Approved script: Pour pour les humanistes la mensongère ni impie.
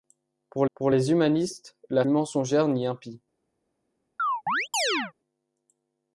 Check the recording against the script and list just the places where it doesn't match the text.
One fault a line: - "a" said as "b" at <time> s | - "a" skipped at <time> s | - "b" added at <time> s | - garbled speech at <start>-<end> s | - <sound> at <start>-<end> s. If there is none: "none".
- chirp at 4.2-5.1 s